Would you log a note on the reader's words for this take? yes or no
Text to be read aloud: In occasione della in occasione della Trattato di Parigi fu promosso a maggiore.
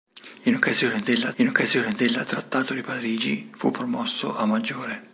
no